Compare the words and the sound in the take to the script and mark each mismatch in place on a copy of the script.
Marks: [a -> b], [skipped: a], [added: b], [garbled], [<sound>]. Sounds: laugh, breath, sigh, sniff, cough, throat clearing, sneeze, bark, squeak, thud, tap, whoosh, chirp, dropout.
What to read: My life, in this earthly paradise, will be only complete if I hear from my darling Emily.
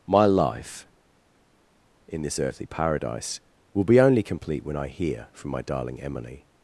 My life, in this earthly paradise, will be only complete [if -> when] I hear from my darling Emily.